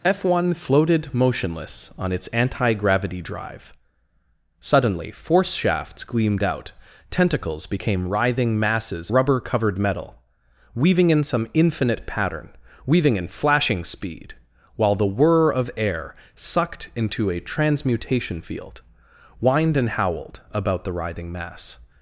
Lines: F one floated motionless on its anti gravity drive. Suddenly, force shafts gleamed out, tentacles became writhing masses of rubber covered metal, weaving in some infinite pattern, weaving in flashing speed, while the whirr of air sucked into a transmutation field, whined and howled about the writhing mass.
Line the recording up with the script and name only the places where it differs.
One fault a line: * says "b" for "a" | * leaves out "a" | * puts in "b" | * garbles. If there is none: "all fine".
* leaves out "of"